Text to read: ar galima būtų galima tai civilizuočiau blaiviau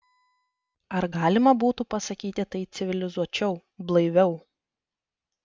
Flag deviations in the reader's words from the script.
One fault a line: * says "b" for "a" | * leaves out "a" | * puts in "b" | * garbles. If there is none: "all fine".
* says "pasakyti" for "galima"